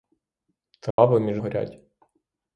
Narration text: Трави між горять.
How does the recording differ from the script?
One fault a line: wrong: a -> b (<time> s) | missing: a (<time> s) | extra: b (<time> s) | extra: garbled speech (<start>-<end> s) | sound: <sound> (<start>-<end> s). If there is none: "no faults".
sound: dropout (0.9-1.0 s)